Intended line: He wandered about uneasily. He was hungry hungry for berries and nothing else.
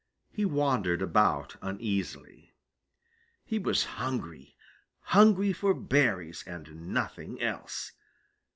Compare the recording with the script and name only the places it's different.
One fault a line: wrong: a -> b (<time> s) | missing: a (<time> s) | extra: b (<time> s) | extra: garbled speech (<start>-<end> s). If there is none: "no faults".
no faults